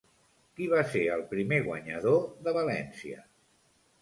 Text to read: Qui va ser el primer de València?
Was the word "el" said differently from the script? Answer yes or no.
no